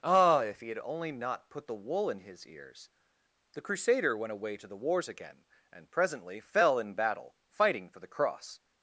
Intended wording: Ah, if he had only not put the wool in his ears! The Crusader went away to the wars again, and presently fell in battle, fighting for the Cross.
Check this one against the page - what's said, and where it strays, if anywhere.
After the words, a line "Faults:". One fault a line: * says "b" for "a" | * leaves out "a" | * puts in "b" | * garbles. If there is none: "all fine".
Ah, if he had only not put the wool in his ears! The Crusader went away to the wars again, and presently fell in battle, fighting for the Cross.
Faults:
all fine